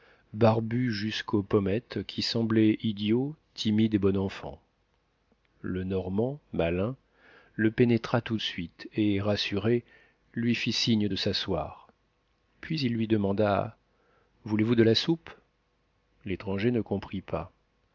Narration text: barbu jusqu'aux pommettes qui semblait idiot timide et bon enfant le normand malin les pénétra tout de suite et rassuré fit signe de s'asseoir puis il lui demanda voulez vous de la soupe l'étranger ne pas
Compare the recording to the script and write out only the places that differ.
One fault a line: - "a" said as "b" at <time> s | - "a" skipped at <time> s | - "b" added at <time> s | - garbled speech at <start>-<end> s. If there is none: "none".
- "les" said as "le" at 7.5 s
- "lui" added at 10.3 s
- "comprit" added at 16.8 s